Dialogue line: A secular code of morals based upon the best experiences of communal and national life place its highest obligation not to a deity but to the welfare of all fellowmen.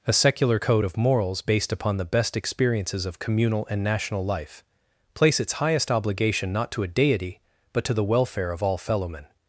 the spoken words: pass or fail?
pass